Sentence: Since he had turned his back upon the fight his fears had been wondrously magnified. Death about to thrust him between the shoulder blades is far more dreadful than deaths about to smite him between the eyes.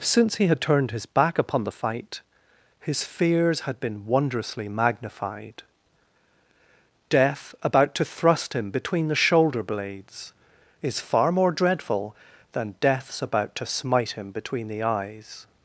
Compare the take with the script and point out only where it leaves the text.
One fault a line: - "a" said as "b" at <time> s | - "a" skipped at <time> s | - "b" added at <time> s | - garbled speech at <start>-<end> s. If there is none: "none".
none